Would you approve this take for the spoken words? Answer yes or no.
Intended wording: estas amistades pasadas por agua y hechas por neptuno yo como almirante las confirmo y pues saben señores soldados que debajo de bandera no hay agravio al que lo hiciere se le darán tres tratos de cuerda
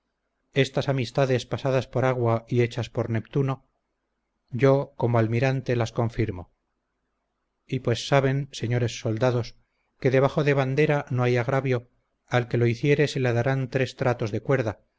yes